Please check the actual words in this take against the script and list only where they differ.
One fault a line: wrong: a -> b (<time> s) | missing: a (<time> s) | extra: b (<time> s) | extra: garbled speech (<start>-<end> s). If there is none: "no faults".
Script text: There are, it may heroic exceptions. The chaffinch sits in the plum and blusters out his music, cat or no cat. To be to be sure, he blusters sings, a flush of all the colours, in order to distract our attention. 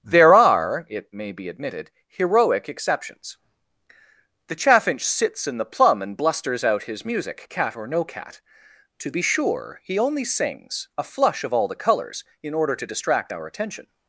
extra: be admitted (1.3 s)
missing: to be (9.2 s)
wrong: blusters -> only (10.0 s)